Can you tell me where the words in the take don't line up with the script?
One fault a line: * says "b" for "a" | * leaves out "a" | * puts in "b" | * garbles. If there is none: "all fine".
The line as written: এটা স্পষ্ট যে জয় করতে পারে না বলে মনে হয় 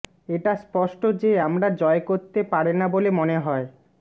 * puts in "আমরা"